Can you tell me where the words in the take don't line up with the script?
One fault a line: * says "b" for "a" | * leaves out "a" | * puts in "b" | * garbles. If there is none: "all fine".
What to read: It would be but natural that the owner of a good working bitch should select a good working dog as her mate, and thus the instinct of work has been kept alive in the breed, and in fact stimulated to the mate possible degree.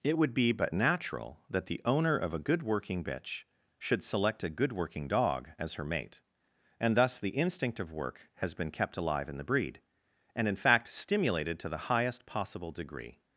* says "highest" for "mate"